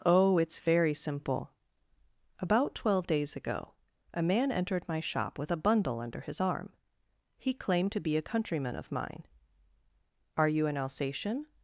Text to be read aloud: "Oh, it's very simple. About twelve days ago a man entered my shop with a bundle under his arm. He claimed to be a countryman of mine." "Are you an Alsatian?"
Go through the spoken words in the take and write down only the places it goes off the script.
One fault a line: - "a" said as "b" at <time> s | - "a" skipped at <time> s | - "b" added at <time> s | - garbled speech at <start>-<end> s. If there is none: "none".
none